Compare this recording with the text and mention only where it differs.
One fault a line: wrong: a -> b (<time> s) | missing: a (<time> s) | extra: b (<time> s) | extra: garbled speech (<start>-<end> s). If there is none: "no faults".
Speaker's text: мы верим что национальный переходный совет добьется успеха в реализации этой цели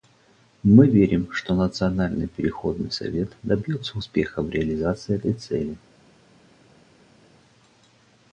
no faults